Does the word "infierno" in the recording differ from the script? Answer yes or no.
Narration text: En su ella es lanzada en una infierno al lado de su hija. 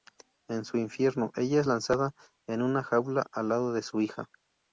yes